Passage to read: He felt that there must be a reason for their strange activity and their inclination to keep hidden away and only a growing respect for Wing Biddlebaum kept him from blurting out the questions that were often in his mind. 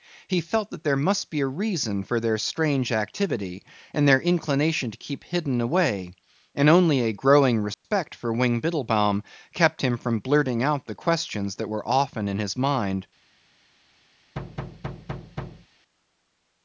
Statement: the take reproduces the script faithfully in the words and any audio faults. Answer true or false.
false